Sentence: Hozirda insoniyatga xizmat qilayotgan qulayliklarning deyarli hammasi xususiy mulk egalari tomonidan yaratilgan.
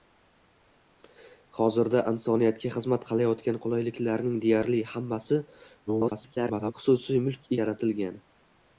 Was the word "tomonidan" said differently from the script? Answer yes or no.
yes